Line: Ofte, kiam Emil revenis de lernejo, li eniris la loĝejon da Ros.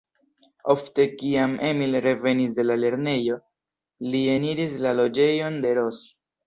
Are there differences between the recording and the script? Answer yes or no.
yes